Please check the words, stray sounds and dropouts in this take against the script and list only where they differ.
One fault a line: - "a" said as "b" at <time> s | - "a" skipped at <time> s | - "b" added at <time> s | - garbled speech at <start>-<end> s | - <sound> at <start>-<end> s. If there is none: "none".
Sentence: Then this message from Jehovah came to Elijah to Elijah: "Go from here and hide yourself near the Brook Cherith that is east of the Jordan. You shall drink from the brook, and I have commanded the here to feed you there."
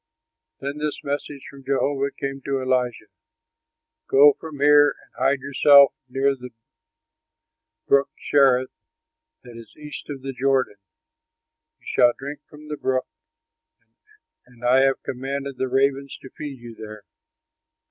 - "to Elijah" skipped at 3.0 s
- "here" said as "ravens" at 15.7 s